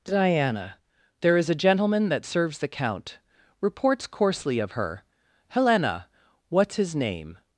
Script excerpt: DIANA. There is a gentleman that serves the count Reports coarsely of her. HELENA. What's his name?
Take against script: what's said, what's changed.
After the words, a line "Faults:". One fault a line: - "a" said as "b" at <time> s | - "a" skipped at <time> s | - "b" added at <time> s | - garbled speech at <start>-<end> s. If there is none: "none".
DIANA. There is a gentleman that serves the count Reports coarsely of her. HELENA. What's his name?
Faults:
none